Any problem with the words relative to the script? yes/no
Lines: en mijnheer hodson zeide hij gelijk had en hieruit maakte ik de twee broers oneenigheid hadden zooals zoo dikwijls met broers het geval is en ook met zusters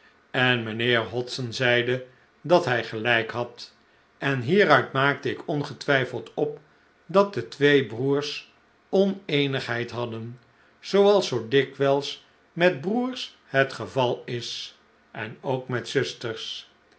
yes